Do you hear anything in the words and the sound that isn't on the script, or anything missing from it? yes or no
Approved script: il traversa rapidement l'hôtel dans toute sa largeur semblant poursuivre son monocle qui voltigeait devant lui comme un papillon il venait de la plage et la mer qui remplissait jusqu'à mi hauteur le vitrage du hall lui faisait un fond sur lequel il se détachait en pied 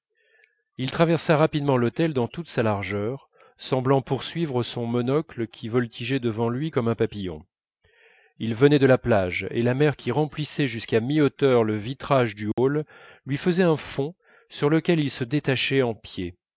yes